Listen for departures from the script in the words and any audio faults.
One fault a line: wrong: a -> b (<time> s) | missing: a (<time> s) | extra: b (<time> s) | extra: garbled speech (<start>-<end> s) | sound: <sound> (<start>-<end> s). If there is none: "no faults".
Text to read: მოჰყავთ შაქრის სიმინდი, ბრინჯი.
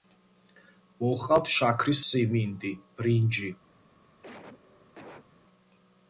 sound: cough (4.2-5.3 s)